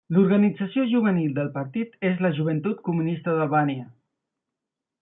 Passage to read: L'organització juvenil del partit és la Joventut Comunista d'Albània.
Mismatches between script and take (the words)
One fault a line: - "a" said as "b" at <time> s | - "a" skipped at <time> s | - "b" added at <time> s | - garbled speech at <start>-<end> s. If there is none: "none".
none